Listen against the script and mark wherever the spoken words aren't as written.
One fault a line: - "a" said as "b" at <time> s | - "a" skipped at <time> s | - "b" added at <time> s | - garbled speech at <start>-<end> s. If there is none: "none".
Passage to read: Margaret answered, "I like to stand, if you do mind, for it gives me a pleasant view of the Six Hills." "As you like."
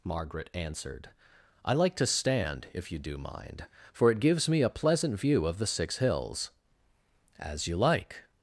none